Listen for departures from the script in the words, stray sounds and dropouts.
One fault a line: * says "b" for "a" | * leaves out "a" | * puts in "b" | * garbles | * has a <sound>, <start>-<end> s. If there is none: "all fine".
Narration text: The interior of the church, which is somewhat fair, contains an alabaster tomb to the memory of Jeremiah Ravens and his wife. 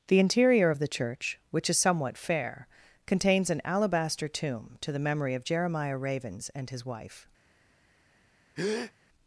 * has a breath, 8.6-8.9 s